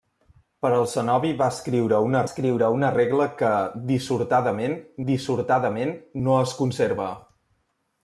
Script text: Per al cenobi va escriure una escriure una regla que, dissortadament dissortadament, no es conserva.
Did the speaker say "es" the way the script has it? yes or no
yes